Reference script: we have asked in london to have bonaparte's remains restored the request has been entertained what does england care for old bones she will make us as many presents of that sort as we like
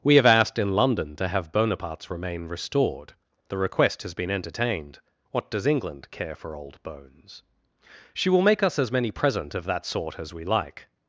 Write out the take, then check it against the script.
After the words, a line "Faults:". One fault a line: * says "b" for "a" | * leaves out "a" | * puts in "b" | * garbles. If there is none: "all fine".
we have asked in london to have bonaparte's remain restored the request has been entertained what does england care for old bones she will make us as many present of that sort as we like
Faults:
* says "remain" for "remains"
* says "present" for "presents"